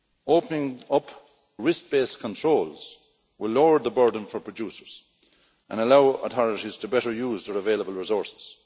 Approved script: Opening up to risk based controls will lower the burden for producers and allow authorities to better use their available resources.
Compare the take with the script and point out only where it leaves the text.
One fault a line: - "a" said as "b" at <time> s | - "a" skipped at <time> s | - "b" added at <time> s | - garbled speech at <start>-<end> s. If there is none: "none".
- "to" skipped at 1.1 s